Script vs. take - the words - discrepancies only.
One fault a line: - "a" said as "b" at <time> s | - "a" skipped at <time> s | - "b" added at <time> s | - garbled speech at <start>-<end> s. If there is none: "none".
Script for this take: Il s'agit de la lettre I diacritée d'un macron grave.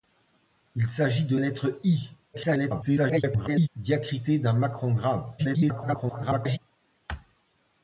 - "la" skipped at 1.4 s
- garbled speech at 2.3-3.7 s
- garbled speech at 5.4-6.6 s